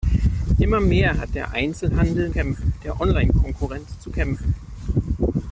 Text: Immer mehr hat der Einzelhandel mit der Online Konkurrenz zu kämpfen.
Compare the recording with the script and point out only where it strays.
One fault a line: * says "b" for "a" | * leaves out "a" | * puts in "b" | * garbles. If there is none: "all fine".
* says "kämpfen" for "mit"